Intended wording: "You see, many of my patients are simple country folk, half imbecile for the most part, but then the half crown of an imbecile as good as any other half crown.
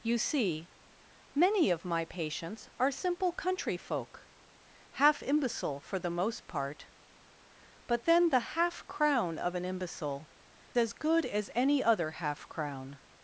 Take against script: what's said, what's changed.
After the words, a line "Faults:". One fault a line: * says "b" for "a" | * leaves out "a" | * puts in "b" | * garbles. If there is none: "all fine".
"You see, many of my patients are simple country folk, half imbecile for the most part, but then the half crown of an imbecile as good as any other half crown.
Faults:
all fine